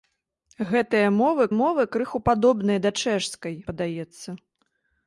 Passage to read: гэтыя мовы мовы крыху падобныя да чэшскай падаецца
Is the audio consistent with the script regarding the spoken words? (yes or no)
yes